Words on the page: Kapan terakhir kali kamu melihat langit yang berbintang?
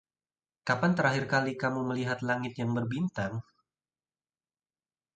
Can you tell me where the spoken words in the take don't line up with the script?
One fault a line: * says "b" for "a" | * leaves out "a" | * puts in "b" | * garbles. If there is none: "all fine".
all fine